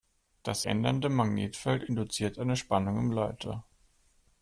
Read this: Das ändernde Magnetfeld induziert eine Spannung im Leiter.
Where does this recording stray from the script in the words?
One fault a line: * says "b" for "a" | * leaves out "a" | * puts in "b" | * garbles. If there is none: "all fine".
all fine